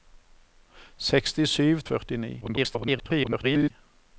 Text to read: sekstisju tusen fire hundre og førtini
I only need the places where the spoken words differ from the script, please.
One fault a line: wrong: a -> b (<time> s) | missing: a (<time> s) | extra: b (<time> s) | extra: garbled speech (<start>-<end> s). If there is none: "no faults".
missing: tusen fire hundre (1.8 s)
extra: garbled speech (2.4-3.7 s)